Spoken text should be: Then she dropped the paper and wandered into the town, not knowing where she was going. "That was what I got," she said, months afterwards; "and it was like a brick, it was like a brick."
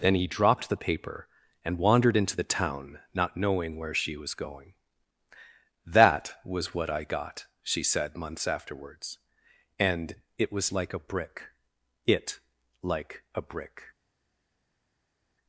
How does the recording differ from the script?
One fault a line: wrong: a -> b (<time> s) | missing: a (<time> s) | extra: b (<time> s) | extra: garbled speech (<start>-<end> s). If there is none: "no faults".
wrong: she -> he (0.1 s)
missing: was (12.4 s)